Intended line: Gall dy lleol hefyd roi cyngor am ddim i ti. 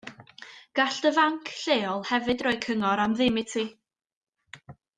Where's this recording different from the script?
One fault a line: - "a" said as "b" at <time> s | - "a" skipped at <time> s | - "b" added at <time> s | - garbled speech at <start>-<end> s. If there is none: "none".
- "fanc" added at 1.2 s